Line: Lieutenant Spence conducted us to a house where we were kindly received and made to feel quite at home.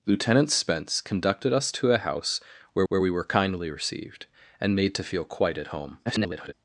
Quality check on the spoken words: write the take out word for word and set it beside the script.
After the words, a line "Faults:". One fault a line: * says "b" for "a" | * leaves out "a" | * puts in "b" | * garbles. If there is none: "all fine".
Lieutenant Spence conducted us to a house where where we were kindly received and made to feel quite at home. [garbled]
Faults:
* puts in "where"
* garbles